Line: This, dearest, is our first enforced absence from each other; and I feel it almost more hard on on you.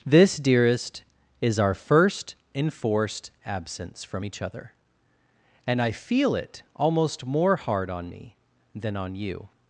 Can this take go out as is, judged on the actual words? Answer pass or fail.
fail